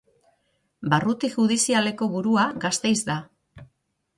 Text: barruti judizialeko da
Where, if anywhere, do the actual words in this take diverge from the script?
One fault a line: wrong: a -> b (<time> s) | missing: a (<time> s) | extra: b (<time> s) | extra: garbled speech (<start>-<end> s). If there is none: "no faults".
extra: burua gasteiz (2.1 s)